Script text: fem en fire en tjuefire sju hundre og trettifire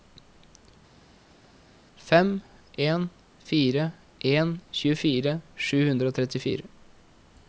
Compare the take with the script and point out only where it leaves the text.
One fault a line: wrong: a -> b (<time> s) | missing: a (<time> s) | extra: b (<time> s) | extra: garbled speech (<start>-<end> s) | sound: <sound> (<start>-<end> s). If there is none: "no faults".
no faults